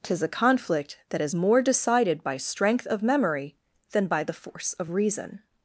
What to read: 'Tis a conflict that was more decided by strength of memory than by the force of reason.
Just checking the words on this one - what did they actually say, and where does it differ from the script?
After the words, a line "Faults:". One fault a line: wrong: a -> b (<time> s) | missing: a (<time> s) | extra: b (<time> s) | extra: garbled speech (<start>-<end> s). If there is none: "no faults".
'Tis a conflict that is more decided by strength of memory than by the force of reason.
Faults:
wrong: was -> is (1.2 s)